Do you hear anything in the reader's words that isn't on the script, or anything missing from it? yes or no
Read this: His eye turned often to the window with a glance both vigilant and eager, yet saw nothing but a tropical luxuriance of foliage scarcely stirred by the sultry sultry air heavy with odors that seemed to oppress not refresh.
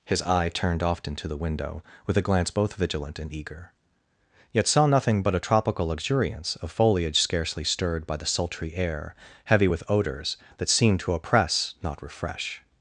yes